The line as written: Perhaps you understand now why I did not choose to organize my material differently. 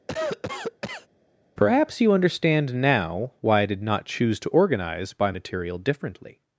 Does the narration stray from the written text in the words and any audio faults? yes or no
yes